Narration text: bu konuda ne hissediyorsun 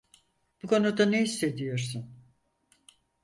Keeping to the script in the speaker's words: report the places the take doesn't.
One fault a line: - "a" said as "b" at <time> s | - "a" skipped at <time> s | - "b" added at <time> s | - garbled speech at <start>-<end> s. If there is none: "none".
none